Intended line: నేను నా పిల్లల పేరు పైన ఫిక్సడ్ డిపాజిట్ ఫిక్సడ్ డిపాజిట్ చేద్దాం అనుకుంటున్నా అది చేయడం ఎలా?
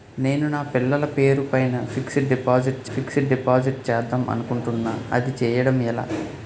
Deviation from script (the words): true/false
false